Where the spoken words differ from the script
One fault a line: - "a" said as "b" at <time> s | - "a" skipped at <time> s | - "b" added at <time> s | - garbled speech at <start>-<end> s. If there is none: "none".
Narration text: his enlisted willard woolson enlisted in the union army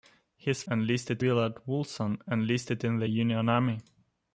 none